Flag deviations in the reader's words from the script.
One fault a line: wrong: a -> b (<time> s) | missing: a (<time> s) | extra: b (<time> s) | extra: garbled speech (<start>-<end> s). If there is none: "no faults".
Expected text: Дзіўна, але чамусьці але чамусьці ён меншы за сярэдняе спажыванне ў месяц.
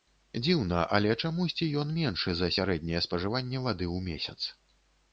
missing: але чамусьці (1.7 s)
extra: вады (3.7 s)